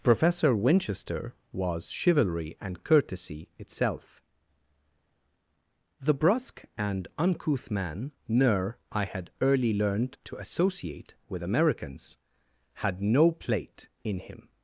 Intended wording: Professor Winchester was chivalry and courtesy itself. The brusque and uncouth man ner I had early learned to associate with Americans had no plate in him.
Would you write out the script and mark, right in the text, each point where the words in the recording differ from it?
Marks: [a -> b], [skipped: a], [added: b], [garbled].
Professor Winchester was chivalry and courtesy itself. The brusque and uncouth man ner I had early learned to associate with Americans had no plate in him.